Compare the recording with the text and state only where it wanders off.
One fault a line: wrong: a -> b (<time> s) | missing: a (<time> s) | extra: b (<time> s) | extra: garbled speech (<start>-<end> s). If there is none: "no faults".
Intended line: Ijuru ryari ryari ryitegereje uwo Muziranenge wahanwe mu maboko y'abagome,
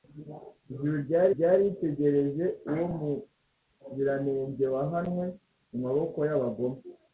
no faults